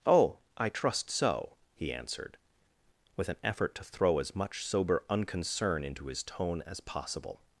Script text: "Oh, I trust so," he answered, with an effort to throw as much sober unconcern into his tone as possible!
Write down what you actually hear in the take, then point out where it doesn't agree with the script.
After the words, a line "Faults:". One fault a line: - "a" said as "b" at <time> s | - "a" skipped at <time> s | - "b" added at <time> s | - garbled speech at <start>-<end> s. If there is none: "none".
"Oh, I trust so," he answered, with an effort to throw as much sober unconcern into his tone as possible!
Faults:
none